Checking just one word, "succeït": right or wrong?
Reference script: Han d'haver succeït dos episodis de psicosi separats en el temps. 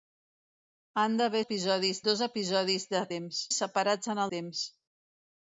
wrong